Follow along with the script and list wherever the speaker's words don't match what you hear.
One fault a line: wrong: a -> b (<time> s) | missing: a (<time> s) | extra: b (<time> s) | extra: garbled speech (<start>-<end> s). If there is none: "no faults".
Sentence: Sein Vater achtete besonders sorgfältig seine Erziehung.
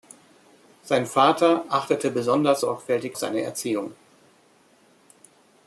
no faults